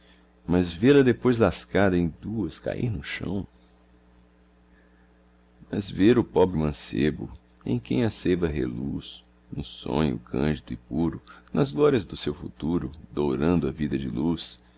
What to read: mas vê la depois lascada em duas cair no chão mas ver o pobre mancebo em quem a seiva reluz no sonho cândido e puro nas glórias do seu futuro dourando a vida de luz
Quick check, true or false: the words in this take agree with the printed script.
true